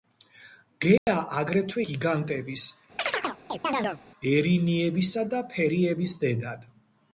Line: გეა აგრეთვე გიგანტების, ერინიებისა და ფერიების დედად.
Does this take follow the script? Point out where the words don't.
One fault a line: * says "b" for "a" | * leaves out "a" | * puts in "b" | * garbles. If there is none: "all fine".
all fine